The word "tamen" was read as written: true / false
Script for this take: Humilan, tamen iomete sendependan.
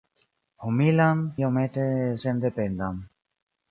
false